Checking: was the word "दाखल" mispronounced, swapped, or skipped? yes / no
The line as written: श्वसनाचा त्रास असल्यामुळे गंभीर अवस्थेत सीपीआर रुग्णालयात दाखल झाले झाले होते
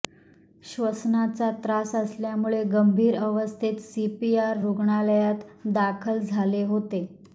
no